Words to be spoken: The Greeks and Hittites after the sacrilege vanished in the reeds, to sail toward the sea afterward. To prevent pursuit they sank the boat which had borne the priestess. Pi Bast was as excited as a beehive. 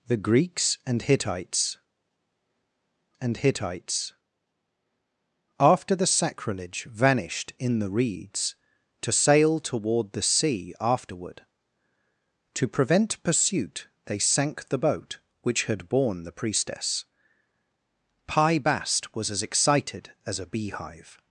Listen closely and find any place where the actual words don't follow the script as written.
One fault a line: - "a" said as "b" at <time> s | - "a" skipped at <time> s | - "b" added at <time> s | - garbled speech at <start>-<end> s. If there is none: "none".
- "and Hittites" added at 3.2 s